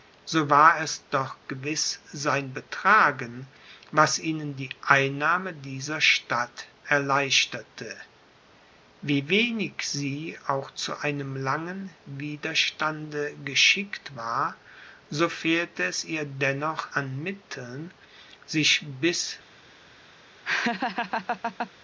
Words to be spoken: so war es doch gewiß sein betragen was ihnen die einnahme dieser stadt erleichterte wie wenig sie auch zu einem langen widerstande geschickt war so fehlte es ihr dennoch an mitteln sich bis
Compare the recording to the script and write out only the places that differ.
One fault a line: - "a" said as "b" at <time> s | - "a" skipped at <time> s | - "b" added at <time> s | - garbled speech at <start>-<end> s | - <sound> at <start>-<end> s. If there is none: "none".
- laugh at 20.4-21.7 s